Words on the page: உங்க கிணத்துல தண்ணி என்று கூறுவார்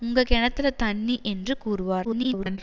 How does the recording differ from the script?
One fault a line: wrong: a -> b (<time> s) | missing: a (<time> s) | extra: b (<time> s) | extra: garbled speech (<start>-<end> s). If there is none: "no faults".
extra: garbled speech (2.0-2.6 s)